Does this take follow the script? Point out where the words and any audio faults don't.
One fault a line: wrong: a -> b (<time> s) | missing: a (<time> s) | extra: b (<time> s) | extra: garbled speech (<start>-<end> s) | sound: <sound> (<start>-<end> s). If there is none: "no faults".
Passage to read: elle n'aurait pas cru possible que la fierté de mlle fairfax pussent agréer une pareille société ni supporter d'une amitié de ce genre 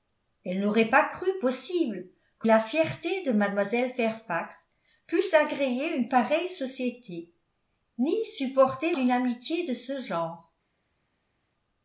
no faults